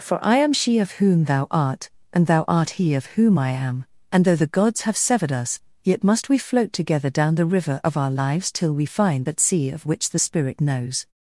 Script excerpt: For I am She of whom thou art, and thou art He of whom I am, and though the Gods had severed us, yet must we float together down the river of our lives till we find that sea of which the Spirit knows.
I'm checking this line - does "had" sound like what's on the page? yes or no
no